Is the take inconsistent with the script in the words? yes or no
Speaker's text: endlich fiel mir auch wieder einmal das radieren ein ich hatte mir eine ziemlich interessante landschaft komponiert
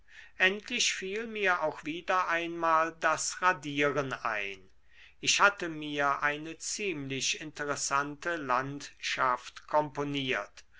no